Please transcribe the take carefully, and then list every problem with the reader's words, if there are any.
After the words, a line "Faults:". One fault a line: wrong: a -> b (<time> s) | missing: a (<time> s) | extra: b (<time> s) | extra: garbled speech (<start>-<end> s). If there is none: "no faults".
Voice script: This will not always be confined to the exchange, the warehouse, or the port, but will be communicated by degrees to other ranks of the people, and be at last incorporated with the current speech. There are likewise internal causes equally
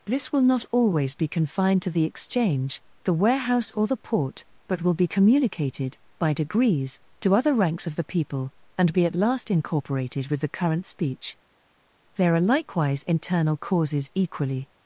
This will not always be confined to the exchange, the warehouse, or the port, but will be communicated by degrees to other ranks of the people, and be at last incorporated with the current speech. There are likewise internal causes equally
Faults:
no faults